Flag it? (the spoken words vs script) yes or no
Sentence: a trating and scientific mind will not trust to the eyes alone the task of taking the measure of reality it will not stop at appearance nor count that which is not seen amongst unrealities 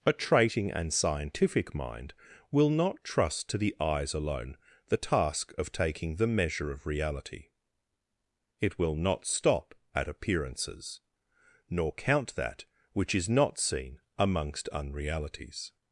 yes